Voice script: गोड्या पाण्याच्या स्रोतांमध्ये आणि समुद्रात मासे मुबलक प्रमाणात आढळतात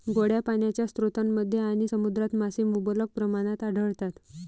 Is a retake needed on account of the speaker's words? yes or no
no